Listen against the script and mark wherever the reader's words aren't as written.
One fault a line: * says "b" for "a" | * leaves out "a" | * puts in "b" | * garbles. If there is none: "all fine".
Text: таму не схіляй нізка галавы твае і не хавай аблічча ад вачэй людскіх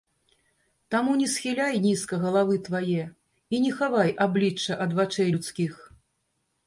all fine